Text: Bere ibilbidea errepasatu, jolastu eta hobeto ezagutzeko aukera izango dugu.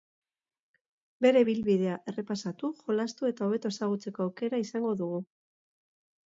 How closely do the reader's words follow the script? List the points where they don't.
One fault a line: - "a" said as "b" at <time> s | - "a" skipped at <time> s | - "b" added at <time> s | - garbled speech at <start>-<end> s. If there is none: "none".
none